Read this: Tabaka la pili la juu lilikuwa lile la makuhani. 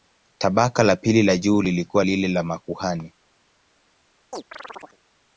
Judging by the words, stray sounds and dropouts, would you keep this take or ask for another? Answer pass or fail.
fail